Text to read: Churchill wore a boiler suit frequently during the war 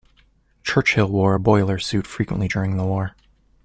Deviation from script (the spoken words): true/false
false